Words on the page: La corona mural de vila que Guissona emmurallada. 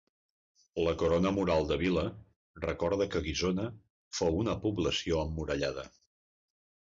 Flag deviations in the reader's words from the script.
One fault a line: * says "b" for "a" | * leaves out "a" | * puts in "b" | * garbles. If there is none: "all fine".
* puts in "recorda"
* puts in "fou una població"